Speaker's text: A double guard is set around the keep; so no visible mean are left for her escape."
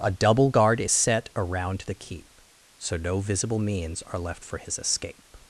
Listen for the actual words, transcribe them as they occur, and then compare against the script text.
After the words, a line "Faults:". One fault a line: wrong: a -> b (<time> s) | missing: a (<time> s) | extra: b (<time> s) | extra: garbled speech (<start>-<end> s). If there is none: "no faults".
A double guard is set around the keep; so no visible means are left for his escape."
Faults:
wrong: mean -> means (3.6 s)
wrong: her -> his (4.6 s)